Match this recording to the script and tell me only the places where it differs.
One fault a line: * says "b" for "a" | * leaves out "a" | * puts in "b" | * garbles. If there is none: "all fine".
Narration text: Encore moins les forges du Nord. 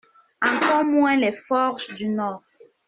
all fine